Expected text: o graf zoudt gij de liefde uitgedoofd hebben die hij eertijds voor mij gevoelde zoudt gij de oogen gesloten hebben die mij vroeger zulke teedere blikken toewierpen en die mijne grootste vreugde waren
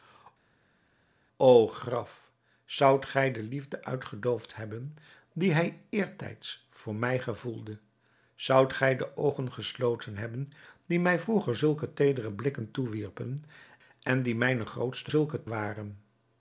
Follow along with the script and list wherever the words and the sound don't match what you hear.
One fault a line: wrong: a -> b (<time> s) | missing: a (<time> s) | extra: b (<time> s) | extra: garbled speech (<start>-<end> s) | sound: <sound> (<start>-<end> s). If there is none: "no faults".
wrong: vreugde -> zulke (15.1 s)